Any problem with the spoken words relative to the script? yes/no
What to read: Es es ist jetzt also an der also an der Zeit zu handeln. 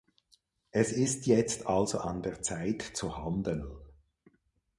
yes